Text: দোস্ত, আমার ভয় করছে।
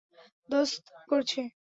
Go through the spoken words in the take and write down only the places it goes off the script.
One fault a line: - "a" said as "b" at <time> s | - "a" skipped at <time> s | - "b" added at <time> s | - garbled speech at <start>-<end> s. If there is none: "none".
- "আমার ভয়" skipped at 0.8 s